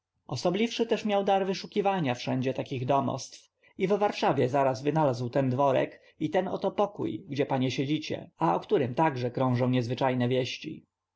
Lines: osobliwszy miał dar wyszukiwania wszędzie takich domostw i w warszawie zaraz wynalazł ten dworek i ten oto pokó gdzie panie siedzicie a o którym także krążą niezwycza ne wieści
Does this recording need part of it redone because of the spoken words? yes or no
yes